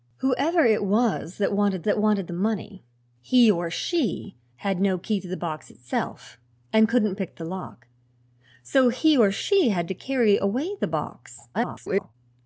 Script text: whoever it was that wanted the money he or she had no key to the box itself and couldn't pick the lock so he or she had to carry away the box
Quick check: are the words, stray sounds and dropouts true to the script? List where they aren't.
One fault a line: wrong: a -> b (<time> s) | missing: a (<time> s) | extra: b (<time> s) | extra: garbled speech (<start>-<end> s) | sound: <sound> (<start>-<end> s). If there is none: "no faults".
extra: that wanted (1.8 s)
extra: garbled speech (11.5-12.1 s)